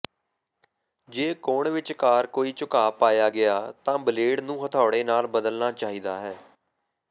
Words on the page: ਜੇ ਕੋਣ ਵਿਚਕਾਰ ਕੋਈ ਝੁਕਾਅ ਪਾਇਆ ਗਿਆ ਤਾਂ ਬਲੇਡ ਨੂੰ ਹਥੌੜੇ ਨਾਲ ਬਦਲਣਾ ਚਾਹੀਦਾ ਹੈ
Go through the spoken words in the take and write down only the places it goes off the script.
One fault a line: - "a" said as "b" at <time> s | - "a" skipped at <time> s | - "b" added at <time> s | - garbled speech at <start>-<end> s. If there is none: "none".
none